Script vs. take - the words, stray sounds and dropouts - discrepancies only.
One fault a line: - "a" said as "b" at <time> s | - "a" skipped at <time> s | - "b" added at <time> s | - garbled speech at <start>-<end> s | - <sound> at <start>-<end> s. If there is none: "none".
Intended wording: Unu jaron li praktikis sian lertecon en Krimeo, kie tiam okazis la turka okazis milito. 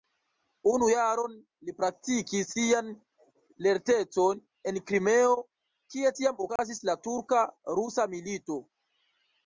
- dropout at 6.6-6.6 s
- "okazis" said as "rusa" at 7.8 s